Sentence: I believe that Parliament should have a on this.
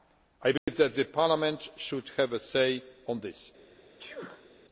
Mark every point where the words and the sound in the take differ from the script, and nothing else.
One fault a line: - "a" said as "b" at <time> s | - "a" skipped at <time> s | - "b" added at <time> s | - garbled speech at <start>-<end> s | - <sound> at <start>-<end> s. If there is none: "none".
- dropout at 0.6-0.7 s
- "say" added at 2.4 s
- sneeze at 4.0-4.5 s